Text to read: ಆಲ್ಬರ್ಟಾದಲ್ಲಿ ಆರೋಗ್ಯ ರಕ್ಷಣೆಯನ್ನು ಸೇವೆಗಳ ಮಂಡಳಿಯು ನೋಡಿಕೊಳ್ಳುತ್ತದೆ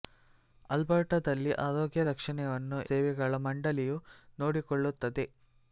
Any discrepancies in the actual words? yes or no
no